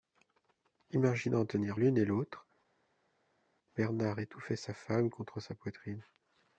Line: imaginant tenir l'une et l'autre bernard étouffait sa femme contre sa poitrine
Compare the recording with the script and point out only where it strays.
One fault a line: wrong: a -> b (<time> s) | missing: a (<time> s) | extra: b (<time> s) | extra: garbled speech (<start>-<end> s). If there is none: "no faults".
no faults